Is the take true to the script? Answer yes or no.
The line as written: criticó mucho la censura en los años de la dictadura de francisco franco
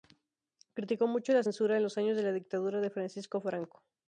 yes